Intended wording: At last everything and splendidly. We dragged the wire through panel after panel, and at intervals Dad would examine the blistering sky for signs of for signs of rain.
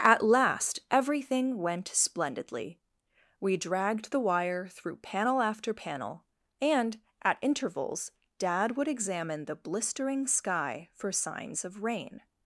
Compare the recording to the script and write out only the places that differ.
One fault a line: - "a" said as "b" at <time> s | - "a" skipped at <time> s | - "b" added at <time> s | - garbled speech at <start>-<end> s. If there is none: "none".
- "and" said as "went" at 1.6 s
- "for signs of" skipped at 11.8 s